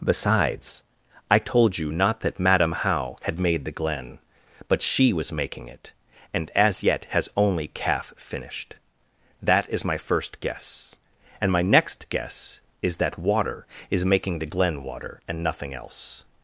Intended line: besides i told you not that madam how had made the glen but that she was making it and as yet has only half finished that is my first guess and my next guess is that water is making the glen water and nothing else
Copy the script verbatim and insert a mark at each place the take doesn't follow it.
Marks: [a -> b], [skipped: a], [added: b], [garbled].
besides i told you not that madam how had made the glen but [skipped: that] she was making it and as yet has only [half -> calf] finished that is my first guess and my next guess is that water is making the glen water and nothing else